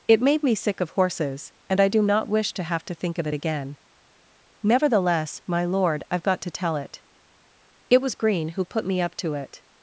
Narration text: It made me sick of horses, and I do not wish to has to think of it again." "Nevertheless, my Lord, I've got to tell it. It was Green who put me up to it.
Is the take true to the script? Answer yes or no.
no